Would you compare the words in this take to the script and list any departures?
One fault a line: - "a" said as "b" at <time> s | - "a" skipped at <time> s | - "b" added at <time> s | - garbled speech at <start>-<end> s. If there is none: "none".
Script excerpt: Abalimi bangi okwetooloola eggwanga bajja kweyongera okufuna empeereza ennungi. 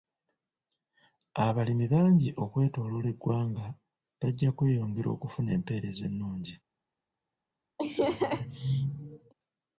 none